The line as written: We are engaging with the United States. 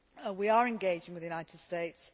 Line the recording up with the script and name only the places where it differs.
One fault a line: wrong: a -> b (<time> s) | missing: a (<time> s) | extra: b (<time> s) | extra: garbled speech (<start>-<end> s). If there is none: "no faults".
no faults